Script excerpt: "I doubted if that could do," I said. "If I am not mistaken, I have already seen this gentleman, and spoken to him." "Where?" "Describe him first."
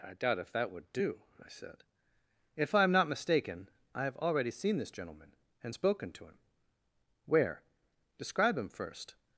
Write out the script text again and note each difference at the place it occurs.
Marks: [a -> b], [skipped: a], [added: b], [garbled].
"I [doubted -> doubt] if that [could -> would] do," I said. "If I am not mistaken, I have already seen this gentleman, and spoken to him." "Where?" "Describe him first."